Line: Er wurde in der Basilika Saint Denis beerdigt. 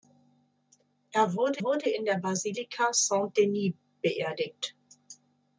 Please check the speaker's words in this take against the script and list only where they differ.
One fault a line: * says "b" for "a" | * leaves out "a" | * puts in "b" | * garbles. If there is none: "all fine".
* puts in "wurde"